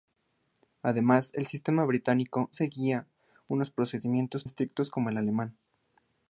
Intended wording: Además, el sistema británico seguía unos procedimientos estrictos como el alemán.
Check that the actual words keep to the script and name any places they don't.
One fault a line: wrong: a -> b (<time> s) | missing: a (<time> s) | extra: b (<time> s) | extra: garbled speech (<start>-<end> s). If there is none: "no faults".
no faults